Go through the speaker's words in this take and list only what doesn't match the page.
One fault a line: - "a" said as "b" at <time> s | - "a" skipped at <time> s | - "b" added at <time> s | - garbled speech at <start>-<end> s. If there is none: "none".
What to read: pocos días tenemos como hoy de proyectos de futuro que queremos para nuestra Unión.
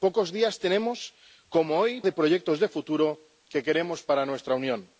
none